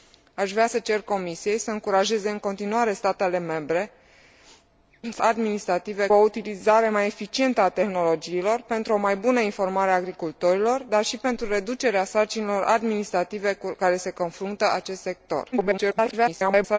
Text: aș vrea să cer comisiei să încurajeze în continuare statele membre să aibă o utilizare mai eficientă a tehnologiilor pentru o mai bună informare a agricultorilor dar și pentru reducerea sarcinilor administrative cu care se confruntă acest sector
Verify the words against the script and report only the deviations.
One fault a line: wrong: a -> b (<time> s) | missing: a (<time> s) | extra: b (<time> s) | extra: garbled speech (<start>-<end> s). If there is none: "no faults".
wrong: aibă -> administrative (5.2 s)
extra: garbled speech (15.5-16.8 s)